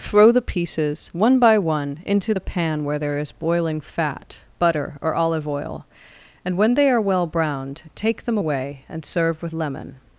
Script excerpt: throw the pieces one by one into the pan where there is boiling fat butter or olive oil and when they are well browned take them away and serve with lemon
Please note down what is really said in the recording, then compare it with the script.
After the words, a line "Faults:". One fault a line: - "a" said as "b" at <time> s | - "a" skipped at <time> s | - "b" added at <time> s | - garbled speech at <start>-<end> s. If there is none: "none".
throw the pieces one by one into the pan where there is boiling fat butter or olive oil and when they are well browned take them away and serve with lemon
Faults:
none